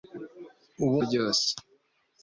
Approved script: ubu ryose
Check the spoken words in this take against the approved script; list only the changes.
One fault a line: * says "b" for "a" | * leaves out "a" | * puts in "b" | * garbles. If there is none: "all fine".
all fine